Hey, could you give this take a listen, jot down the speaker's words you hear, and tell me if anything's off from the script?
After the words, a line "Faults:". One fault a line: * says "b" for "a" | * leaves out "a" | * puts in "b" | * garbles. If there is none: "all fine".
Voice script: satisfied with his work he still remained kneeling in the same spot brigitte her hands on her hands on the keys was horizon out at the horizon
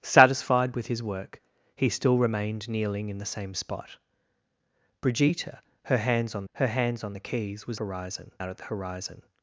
satisfied with his work he still remained kneeling in the same spot brigitte her hands on her hands on the keys was horizon out at the horizon
Faults:
all fine